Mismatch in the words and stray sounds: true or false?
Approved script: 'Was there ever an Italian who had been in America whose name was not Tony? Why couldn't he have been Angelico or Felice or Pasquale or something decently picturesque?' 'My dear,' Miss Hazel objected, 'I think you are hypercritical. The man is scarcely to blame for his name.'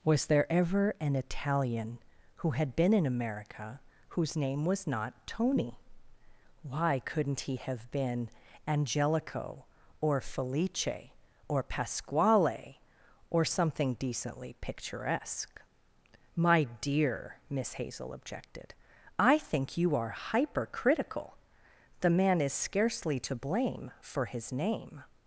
false